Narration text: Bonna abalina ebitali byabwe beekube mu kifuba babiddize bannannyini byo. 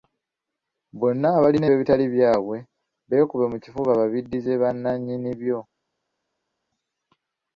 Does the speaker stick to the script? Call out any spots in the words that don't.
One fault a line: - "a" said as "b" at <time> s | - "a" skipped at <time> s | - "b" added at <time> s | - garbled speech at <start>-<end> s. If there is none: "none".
none